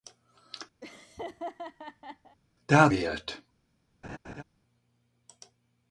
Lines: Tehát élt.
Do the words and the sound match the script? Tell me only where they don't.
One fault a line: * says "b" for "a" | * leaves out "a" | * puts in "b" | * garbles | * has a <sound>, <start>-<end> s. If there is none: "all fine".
* has a laugh, 0.8-2.4 s
* has a laugh, 4.0-4.4 s